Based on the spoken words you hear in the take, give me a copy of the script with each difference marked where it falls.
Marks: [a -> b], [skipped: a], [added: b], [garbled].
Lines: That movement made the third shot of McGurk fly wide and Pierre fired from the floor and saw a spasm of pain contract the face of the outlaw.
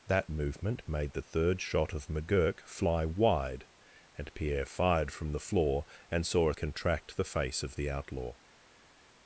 That movement made the third shot of McGurk fly wide and Pierre fired from the floor and saw a [skipped: spasm of pain] contract the face of the outlaw.